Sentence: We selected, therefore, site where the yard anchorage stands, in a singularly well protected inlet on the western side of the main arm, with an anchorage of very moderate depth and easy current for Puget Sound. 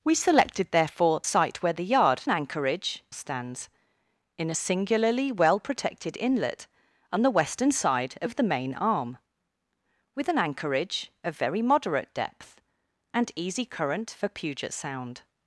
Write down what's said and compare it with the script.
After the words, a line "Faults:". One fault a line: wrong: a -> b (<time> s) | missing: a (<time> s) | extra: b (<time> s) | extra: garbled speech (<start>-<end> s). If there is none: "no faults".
We selected, therefore, site where the yard anchorage stands, in a singularly well protected inlet on the western side of the main arm, with an anchorage of very moderate depth and easy current for Puget Sound.
Faults:
no faults